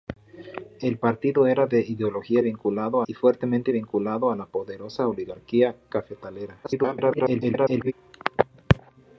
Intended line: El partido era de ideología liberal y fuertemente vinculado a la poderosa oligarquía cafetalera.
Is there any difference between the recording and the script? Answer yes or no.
yes